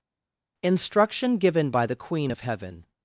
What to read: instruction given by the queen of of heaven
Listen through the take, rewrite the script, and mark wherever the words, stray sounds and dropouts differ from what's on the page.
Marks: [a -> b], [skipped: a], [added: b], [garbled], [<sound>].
instruction given by the queen of [skipped: of] heaven